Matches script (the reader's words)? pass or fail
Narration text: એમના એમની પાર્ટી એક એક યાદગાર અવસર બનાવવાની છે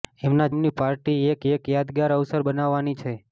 pass